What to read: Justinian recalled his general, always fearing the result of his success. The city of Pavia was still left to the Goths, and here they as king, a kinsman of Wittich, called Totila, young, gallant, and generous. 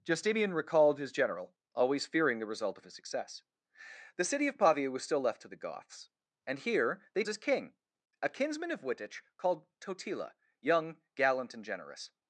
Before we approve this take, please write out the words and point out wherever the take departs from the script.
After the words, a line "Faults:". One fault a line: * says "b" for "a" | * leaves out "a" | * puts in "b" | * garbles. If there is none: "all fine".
Justinian recalled his general, always fearing the result of his success. The city of Pavia was still left to the Goths, and here they as king, a kinsman of Wittich, called Totila, young, gallant, and generous.
Faults:
all fine